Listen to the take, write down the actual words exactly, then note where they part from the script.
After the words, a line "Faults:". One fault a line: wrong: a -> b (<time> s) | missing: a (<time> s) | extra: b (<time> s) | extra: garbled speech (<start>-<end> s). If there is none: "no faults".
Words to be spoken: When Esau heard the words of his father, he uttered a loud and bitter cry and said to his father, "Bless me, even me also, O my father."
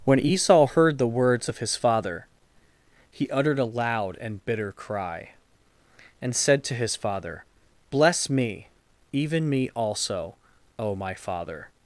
When Esau heard the words of his father, he uttered a loud and bitter cry and said to his father, "Bless me, even me also, O my father."
Faults:
no faults